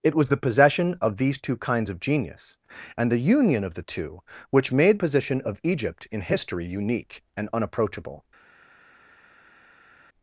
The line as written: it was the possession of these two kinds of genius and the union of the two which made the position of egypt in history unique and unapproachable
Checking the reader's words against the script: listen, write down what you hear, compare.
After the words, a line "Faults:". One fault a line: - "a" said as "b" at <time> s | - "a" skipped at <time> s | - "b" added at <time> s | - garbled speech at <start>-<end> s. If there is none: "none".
it was the possession of these two kinds of genius and the union of the two which made position of egypt in history unique and unapproachable
Faults:
- "the" skipped at 5.0 s